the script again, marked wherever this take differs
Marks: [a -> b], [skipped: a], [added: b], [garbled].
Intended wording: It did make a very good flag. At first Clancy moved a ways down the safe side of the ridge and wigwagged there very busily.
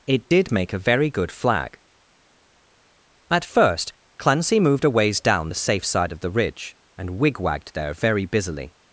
It did make a very good flag. At first Clancy moved a ways down the safe side of the ridge and wigwagged there very busily.